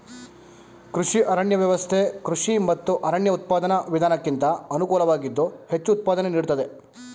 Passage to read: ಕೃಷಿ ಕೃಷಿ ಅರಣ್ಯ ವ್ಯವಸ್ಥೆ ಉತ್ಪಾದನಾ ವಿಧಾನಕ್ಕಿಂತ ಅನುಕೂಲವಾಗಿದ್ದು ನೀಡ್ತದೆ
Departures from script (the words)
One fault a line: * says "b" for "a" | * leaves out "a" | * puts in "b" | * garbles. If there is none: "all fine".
* puts in "ಅರಣ್ಯ ವ್ಯವಸ್ಥೆ"
* puts in "ಮತ್ತು"
* leaves out "ವ್ಯವಸ್ಥೆ"
* puts in "ಹೆಚ್ಚು ಉತ್ಪಾದನೆ"